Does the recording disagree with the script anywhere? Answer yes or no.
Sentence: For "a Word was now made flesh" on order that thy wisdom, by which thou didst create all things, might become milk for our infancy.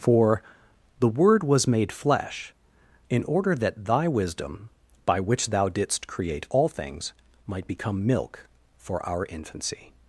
yes